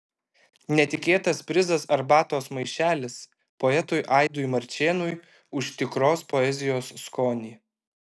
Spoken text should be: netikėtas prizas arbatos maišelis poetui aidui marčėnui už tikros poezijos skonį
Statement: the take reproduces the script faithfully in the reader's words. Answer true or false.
true